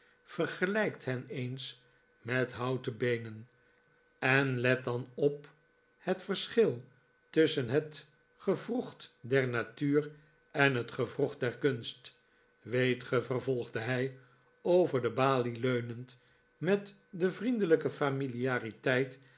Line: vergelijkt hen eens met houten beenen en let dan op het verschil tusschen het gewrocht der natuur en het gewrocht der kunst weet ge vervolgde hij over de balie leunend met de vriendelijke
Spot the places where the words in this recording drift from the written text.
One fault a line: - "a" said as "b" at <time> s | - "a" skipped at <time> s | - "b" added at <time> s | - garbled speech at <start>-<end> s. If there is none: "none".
none